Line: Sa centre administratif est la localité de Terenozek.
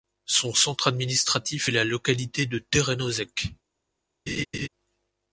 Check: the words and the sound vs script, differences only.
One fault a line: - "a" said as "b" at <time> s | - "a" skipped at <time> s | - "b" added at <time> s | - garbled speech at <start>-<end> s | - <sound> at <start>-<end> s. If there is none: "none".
- "Sa" said as "Son" at 0.2 s
- laugh at 4.3-4.7 s